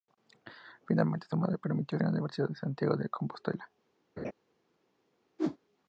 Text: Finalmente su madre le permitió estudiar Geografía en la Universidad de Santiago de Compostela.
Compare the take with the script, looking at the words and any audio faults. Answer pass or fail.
fail